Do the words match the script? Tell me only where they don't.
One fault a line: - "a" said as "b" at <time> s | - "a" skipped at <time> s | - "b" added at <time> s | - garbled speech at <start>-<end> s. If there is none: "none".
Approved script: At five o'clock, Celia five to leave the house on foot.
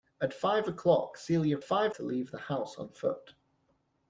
none